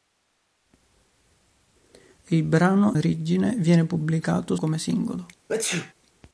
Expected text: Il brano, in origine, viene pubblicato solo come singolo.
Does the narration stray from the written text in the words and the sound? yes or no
yes